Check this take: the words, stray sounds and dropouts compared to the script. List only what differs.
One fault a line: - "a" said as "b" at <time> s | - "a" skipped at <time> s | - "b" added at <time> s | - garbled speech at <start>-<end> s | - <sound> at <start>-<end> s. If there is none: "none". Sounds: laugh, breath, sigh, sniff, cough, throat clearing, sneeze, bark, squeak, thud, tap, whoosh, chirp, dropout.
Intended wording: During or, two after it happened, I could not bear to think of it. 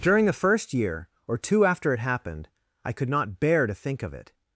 - "the first year" added at 0.2 s